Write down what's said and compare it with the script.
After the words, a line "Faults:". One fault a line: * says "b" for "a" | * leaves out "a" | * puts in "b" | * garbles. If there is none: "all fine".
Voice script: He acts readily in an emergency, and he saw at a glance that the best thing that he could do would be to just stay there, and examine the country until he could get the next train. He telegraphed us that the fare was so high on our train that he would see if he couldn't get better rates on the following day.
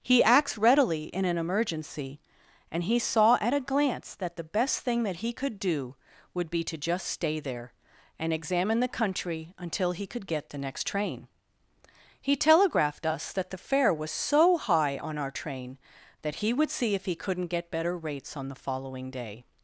He acts readily in an emergency, and he saw at a glance that the best thing that he could do would be to just stay there, and examine the country until he could get the next train. He telegraphed us that the fare was so high on our train that he would see if he couldn't get better rates on the following day.
Faults:
all fine